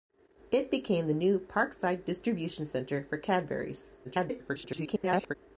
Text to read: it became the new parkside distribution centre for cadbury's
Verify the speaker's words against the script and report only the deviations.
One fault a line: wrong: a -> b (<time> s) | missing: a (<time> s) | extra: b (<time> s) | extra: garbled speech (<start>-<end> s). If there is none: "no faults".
extra: garbled speech (4.0-5.4 s)